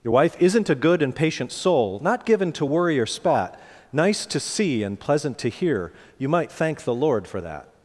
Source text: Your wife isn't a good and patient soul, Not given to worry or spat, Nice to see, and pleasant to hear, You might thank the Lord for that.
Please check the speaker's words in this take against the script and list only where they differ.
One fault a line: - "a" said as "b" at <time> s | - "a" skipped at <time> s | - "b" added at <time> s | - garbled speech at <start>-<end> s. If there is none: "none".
none